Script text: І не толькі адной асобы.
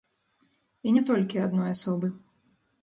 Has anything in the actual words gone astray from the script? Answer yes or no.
no